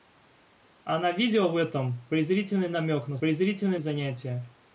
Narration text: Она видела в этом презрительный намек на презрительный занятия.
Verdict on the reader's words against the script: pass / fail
pass